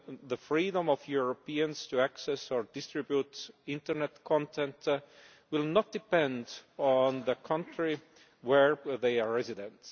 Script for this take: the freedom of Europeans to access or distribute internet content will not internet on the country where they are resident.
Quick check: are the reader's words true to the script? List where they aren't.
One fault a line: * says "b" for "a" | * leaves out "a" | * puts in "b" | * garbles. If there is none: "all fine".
* says "depend" for "internet"